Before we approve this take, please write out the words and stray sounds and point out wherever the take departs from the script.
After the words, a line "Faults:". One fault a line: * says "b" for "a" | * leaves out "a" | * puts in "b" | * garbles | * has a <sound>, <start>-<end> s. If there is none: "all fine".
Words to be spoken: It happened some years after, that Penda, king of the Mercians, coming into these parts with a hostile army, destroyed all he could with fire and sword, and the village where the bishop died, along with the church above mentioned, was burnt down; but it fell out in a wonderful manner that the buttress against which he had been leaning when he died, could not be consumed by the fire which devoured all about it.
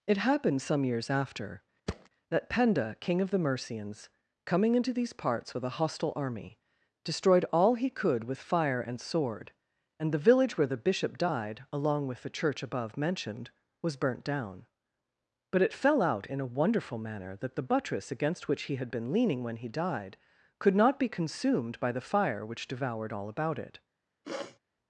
It happened some years after, that Penda, king of the Mercians, coming into these parts with a hostile army, destroyed all he could with fire and sword, and the village where the bishop died, along with the church above mentioned, was burnt down; but it fell out in a wonderful manner that the buttress against which he had been leaning when he died, could not be consumed by the fire which devoured all about it.
Faults:
* has a thud, 1.9-2.1 s
* has a sniff, 24.2-24.6 s